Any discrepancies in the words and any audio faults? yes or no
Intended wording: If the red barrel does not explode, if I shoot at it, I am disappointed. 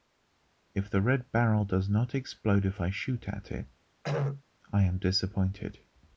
yes